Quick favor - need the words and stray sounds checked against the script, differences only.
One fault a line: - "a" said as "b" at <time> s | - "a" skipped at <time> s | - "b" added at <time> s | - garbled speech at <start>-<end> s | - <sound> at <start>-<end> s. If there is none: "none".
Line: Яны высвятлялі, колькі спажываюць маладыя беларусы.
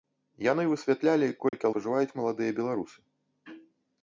- dropout at 1.5-1.5 s